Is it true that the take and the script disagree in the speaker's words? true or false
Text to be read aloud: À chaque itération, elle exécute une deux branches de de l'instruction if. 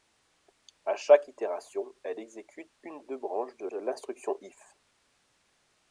false